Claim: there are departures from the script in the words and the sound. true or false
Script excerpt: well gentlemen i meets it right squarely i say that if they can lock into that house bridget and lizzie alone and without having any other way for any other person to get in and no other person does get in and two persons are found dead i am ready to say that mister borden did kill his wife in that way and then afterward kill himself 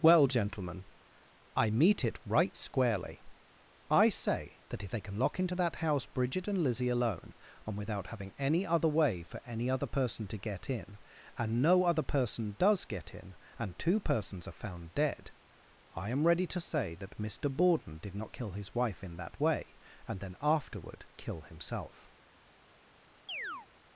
true